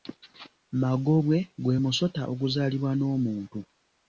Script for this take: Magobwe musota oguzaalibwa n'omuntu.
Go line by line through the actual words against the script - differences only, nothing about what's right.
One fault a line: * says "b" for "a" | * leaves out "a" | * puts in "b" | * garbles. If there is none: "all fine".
* puts in "gwe"